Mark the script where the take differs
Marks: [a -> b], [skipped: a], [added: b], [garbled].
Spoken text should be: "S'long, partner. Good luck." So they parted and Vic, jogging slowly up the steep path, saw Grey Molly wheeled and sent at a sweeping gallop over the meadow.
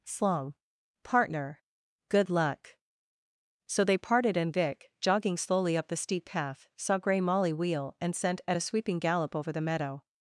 "S'long, partner. Good luck." So they parted and Vic, jogging slowly up the steep path, saw Grey Molly [wheeled -> wheel] and sent at a sweeping gallop over the meadow.